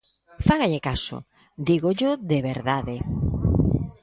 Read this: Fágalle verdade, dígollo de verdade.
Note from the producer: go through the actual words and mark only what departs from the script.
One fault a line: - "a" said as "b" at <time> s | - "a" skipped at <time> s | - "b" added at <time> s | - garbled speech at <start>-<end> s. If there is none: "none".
- "verdade" said as "caso" at 0.8 s